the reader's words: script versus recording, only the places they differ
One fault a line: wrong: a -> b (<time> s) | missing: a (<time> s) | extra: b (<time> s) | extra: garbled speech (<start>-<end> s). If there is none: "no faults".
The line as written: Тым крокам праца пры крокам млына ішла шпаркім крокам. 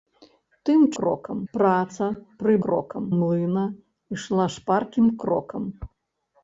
no faults